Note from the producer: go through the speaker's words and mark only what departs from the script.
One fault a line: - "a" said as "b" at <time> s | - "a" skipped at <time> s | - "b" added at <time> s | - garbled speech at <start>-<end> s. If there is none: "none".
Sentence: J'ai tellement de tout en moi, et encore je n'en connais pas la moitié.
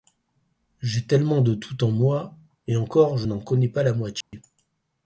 none